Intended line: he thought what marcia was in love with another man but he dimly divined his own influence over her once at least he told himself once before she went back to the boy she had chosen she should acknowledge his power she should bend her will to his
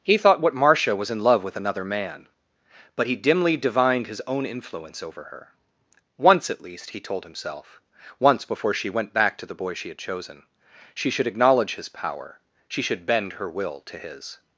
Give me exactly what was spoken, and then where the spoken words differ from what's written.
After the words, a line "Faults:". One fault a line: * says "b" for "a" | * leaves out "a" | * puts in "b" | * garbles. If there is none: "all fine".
he thought what marcia was in love with another man but he dimly divined his own influence over her once at least he told himself once before she went back to the boy she had chosen she should acknowledge his power she should bend her will to his
Faults:
all fine